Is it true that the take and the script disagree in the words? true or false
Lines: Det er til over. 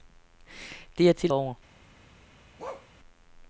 false